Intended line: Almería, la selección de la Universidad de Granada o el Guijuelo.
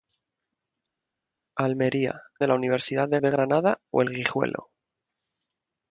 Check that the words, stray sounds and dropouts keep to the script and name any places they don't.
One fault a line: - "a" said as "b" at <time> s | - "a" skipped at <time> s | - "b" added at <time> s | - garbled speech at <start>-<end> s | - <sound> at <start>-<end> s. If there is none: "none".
- "la selección" skipped at 2.2 s
- "de" added at 3.2 s